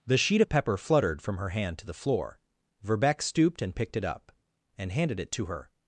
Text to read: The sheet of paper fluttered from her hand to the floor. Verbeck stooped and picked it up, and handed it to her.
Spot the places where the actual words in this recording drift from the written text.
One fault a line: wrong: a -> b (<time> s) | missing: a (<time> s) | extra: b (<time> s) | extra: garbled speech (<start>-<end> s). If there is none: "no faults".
wrong: paper -> pepper (0.5 s)